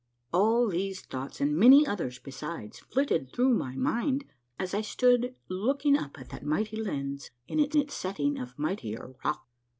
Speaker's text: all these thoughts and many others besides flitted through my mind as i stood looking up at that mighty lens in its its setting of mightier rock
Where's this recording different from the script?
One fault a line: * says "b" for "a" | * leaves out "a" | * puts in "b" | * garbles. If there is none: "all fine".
all fine